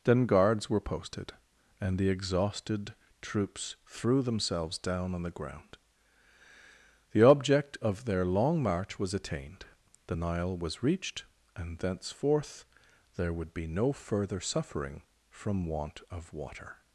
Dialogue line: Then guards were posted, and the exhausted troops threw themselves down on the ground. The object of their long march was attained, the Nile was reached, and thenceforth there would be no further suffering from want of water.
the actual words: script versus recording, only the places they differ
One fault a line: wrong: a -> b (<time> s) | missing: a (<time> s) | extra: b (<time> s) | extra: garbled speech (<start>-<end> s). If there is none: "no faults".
no faults